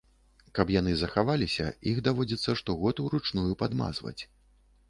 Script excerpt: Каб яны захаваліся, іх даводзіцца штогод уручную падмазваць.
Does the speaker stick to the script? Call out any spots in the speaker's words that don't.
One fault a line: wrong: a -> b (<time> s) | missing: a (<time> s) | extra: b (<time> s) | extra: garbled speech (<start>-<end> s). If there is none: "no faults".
no faults